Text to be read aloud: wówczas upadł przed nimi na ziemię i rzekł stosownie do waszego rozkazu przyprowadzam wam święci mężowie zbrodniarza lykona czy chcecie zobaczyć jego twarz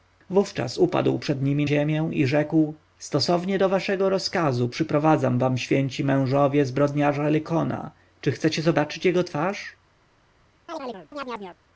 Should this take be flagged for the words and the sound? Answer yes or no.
yes